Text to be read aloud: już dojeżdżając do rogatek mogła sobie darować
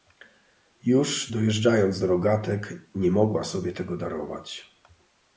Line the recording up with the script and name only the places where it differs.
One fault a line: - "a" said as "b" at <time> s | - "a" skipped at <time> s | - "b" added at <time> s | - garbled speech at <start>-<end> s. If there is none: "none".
- "nie" added at 2.9 s
- "tego" added at 3.7 s